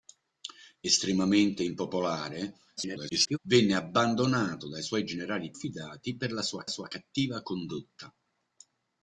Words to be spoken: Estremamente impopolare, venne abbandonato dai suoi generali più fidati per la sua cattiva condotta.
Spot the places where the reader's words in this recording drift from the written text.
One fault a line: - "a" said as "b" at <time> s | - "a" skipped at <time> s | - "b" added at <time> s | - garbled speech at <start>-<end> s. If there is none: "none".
- garbled speech at 2.8-3.4 s
- "più" skipped at 5.5 s
- "sua" added at 6.7 s